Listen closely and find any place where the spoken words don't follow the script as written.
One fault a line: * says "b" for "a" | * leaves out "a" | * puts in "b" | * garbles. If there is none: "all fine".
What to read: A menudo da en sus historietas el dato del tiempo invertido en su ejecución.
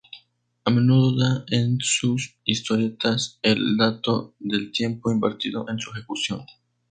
all fine